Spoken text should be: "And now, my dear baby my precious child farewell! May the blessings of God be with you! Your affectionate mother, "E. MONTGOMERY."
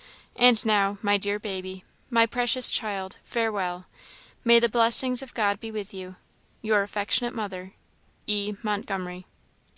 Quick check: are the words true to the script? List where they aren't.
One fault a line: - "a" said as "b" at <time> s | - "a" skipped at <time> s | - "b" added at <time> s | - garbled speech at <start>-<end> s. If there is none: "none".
none